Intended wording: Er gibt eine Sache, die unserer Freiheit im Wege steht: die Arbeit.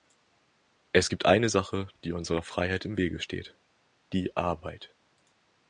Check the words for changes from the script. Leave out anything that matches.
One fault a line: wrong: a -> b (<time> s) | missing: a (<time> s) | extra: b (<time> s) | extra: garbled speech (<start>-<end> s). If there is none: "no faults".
wrong: Er -> Es (0.9 s)